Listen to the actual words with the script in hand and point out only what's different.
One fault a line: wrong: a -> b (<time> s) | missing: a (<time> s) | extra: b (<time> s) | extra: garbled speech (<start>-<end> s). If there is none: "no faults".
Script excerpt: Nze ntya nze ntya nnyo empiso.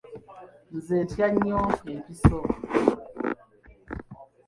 missing: nze ntya (1.3 s)